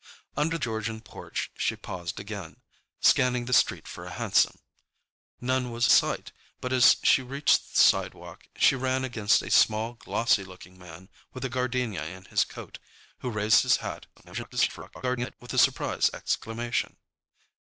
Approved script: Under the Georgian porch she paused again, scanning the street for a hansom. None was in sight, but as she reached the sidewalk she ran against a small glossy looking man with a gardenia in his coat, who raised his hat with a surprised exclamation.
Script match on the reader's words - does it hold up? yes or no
no